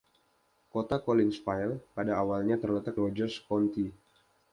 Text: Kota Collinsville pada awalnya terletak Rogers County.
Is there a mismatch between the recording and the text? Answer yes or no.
no